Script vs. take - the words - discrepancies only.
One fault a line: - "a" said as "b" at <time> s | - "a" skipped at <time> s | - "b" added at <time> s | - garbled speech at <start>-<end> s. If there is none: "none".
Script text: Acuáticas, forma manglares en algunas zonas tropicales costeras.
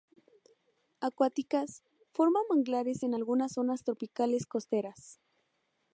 none